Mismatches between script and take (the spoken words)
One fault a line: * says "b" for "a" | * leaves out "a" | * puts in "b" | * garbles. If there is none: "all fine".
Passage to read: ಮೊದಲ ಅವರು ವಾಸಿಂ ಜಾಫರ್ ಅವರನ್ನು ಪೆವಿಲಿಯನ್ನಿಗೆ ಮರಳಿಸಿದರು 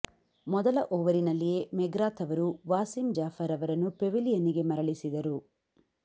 * puts in "ಓವರಿನಲ್ಲಿಯೇ ಮೆಗ್ರಾಥ್"